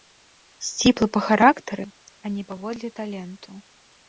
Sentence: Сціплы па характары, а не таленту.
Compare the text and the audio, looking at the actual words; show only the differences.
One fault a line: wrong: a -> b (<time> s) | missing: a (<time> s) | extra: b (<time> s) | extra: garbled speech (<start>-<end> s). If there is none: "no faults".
extra: паводле (2.5 s)